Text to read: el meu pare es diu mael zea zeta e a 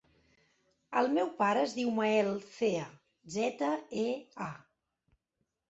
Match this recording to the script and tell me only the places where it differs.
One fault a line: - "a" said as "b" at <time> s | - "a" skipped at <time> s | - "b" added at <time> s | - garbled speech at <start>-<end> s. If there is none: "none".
none